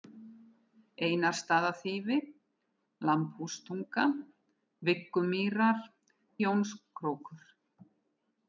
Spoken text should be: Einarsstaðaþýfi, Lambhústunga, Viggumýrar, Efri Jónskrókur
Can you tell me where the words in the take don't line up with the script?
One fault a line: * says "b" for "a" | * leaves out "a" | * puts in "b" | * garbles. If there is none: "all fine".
* leaves out "Efri"